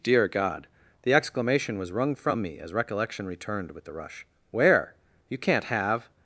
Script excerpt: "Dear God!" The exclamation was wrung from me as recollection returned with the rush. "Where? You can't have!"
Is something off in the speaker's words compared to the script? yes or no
no